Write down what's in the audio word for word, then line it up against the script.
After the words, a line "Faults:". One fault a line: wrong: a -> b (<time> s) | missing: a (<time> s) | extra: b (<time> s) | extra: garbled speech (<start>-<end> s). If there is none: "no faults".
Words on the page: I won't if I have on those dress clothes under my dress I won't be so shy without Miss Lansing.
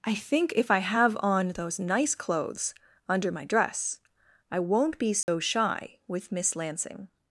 I think if I have on those nice clothes under my dress I won't be so shy with Miss Lansing.
Faults:
wrong: won't -> think (0.1 s)
wrong: dress -> nice (1.8 s)
wrong: without -> with (6.1 s)